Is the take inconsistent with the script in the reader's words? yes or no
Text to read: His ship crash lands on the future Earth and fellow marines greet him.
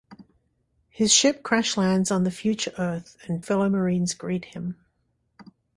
no